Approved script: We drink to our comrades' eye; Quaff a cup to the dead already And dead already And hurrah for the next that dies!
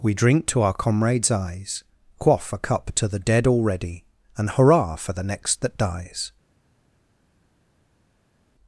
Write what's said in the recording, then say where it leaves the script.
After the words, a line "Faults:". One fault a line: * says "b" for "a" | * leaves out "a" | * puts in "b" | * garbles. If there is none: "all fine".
We drink to our comrades' eyes; Quaff a cup to the dead already And hurrah for the next that dies!
Faults:
* says "eyes" for "eye"
* leaves out "dead already And"